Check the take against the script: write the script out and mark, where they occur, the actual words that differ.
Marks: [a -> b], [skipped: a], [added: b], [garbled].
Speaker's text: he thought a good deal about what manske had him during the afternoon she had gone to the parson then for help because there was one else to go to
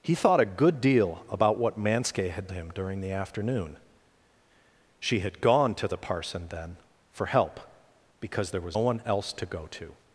he thought a good deal about what manske had him during the afternoon she had gone to the parson then for help because there was one else to go to